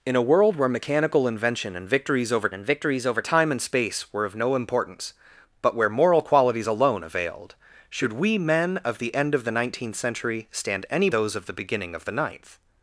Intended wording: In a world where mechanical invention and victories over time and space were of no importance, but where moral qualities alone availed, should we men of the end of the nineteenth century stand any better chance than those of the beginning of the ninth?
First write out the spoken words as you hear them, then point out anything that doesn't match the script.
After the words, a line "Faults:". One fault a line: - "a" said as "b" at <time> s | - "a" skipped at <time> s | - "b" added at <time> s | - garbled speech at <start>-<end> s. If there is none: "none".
In a world where mechanical invention and victories over and victories over time and space were of no importance, but where moral qualities alone availed, should we men of the end of the nineteenth century stand any those of the beginning of the ninth?
Faults:
- "and victories over" added at 2.5 s
- "better chance than" skipped at 11.1 s